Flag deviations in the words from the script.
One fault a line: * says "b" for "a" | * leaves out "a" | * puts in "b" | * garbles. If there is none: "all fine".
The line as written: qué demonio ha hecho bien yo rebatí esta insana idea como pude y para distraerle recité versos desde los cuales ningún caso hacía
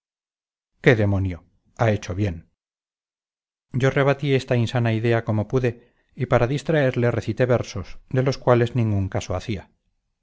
* says "de" for "desde"